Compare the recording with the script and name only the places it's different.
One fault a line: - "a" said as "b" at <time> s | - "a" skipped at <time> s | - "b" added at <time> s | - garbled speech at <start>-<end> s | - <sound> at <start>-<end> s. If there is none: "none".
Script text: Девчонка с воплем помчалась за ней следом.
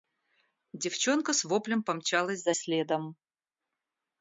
- "ней" skipped at 2.5 s